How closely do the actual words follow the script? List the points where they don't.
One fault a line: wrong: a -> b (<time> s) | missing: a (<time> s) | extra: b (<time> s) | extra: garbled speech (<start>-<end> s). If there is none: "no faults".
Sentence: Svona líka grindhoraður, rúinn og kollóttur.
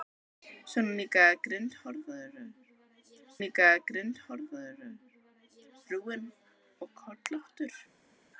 extra: líka grindhoraður (3.4 s)